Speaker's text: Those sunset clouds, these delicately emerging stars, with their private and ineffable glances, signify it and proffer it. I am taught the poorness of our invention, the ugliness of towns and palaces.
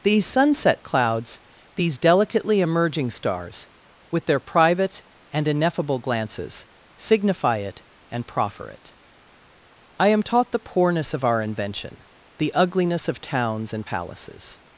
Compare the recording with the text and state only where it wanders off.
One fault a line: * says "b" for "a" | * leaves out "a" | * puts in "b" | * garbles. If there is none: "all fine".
* says "These" for "Those"